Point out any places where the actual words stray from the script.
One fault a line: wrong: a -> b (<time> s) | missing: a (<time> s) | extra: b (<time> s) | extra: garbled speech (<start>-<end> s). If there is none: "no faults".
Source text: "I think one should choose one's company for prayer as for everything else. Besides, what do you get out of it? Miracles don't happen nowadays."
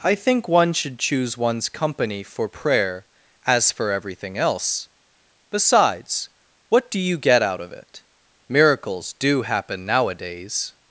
wrong: don't -> do (9.1 s)